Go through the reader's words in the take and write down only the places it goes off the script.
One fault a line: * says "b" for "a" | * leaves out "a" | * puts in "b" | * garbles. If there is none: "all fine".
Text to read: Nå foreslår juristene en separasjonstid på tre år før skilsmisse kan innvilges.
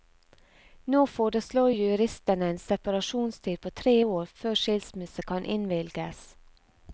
all fine